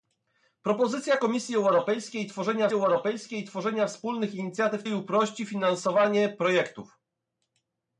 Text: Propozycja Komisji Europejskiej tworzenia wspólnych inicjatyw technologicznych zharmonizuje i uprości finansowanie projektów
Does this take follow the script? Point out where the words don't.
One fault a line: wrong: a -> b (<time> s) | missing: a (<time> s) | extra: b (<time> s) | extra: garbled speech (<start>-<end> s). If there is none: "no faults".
extra: Europejskiej tworzenia (2.7 s)
missing: technologicznych zharmonizuje (4.8 s)